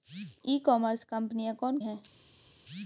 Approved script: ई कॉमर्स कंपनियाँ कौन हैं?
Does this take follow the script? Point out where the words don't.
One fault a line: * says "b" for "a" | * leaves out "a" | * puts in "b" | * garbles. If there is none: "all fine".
all fine